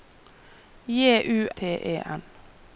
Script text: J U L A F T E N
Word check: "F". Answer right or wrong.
wrong